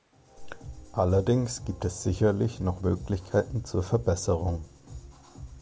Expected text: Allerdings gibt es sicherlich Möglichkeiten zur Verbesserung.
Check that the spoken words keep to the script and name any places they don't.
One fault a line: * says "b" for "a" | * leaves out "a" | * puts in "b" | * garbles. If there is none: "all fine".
* puts in "noch"